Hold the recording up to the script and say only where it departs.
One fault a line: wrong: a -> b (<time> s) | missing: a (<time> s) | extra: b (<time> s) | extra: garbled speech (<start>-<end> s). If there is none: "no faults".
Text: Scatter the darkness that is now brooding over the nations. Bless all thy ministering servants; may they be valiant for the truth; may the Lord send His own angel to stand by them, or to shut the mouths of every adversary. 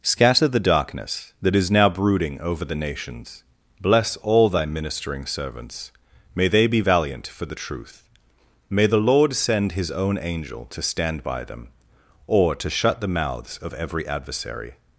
no faults